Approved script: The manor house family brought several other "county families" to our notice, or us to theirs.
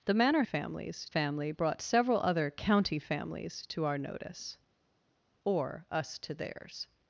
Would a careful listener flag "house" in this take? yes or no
yes